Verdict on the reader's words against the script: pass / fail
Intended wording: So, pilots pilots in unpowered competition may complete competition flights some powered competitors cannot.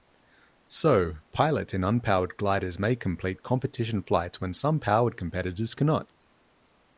fail